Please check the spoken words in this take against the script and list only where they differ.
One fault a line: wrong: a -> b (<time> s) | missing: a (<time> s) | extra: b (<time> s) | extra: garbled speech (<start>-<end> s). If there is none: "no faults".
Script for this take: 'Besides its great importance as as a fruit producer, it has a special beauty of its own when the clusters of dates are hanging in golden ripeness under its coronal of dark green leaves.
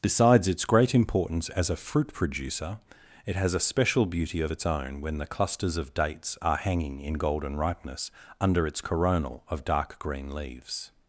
missing: as (1.7 s)